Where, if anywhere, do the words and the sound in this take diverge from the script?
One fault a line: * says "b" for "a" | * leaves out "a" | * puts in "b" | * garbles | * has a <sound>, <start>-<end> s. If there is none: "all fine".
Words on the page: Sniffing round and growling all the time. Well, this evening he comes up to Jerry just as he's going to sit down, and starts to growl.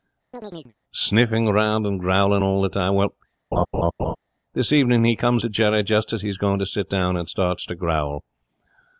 * has a chirp, 0.3-0.7 s
* has a laugh, 3.5-4.2 s
* leaves out "up"